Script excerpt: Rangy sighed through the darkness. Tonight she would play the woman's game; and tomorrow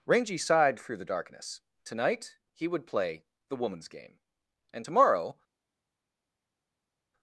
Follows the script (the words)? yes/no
no